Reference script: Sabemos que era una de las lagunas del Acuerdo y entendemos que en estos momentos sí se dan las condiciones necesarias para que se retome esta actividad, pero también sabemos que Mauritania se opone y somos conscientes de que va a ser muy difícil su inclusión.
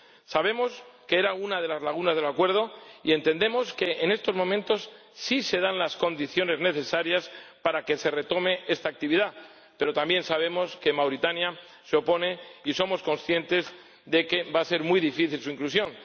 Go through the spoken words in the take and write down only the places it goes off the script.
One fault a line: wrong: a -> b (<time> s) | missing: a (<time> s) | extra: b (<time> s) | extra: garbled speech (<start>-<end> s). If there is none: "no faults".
no faults